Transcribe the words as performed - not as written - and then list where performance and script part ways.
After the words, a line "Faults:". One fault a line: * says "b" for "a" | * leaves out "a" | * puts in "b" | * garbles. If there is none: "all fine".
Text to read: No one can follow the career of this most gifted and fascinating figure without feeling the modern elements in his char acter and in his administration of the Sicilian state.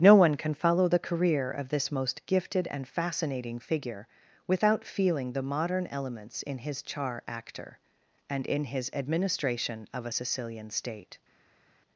No one can follow the career of this most gifted and fascinating figure without feeling the modern elements in his char acter and in his administration of a Sicilian state.
Faults:
* says "a" for "the"